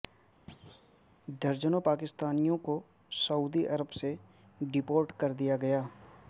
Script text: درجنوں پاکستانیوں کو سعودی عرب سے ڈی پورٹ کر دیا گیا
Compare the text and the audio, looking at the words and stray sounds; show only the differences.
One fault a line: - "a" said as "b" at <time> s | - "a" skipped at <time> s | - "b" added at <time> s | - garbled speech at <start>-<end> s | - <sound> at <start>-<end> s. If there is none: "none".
- thud at 0.5-1.0 s